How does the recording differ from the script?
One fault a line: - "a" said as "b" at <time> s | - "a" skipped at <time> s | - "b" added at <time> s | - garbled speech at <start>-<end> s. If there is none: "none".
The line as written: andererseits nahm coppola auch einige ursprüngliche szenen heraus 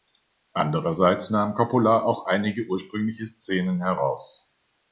none